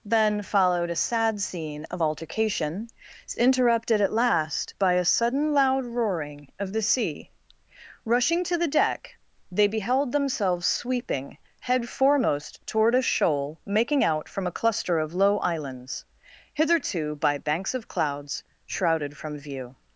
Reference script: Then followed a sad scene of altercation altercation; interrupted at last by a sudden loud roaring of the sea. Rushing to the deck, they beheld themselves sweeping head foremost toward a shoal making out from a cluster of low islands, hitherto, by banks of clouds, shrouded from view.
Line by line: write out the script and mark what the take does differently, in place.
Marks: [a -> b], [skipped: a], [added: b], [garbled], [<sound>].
Then followed a sad scene of altercation [skipped: altercation;] interrupted at last by a sudden loud roaring of the sea. Rushing to the deck, they beheld themselves sweeping head foremost toward a shoal making out from a cluster of low islands, hitherto, by banks of clouds, shrouded from view.